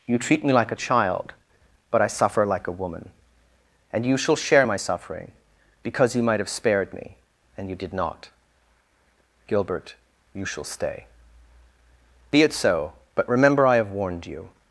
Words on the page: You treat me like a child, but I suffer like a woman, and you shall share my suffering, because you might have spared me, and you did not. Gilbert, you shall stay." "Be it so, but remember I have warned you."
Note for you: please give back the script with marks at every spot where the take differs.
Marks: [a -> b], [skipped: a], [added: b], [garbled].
You treat me like a child, but I suffer like a woman, and you shall share my suffering, because you might have spared me, and you did not. Gilbert, you shall stay." "Be it so, but remember I have warned you."